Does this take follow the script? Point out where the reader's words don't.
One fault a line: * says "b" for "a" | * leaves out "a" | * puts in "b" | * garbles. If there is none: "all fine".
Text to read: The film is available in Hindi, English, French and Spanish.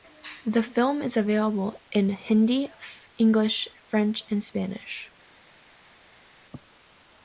all fine